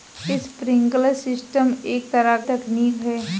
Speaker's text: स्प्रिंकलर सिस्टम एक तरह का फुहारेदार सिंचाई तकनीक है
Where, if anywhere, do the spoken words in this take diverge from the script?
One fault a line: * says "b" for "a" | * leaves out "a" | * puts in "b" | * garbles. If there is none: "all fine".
* leaves out "का फुहारेदार सिंचाई"